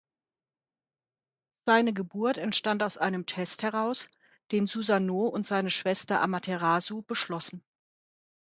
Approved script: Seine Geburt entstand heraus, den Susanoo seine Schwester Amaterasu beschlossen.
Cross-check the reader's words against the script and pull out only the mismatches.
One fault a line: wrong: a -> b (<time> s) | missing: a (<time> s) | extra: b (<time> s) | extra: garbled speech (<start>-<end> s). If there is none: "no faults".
extra: aus einem Test (2.8 s)
extra: und (5.2 s)